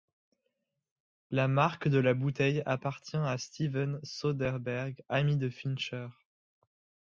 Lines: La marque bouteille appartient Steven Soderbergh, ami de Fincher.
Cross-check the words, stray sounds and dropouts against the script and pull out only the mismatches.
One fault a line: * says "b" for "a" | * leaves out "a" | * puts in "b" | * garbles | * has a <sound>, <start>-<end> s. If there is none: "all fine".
* puts in "de la"
* puts in "à"